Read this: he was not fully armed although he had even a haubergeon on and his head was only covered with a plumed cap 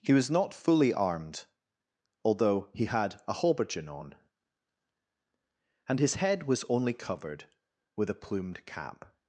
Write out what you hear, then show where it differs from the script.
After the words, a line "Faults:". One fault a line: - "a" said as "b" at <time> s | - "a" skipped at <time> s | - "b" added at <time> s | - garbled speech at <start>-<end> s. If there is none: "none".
he was not fully armed although he had a haubergeon on and his head was only covered with a plumed cap
Faults:
- "even" skipped at 3.2 s